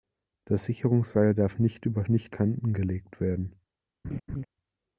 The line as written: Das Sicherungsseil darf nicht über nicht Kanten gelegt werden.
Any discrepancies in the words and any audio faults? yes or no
yes